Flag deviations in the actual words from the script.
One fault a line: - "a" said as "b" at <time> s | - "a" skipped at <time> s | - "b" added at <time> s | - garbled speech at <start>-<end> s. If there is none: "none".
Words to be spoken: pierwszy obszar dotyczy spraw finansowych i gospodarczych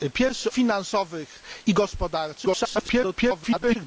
- "obszar dotyczy spraw" skipped at 0.5 s
- garbled speech at 2.5-3.8 s